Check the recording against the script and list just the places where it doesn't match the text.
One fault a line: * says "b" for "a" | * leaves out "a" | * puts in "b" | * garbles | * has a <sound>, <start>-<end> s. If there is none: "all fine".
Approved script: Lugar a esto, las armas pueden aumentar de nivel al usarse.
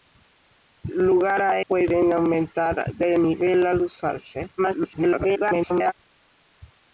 * leaves out "esto las armas"
* garbles